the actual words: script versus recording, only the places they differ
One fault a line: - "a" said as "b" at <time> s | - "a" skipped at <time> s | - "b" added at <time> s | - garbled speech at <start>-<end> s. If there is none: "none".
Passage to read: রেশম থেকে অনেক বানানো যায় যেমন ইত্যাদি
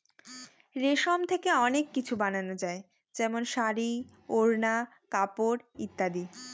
- "কিছু" added at 1.9 s
- "শাড়ী ওড়না কাপড়" added at 3.5 s